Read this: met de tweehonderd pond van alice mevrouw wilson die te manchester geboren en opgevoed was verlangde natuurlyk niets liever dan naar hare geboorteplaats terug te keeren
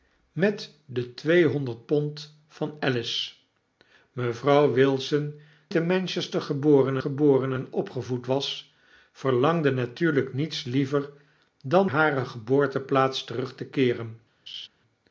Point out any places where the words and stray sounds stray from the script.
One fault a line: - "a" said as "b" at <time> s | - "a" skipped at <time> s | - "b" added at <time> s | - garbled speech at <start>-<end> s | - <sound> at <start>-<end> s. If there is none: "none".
- "die" skipped at 5.4 s
- "geboren" added at 7.0 s
- "naar" skipped at 11.9 s
- laugh at 14.5-14.7 s